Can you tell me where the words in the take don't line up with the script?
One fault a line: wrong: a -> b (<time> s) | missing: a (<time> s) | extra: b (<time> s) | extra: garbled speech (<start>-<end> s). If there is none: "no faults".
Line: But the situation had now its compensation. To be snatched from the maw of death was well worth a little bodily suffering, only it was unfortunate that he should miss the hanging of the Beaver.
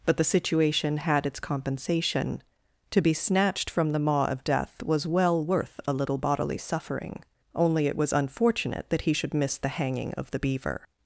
missing: now (1.2 s)